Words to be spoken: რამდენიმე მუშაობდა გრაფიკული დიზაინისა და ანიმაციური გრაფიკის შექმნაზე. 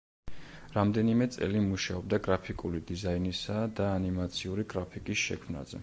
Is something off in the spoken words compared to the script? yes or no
yes